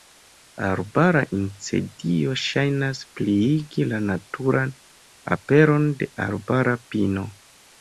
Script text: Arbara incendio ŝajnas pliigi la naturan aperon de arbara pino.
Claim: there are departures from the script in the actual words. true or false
false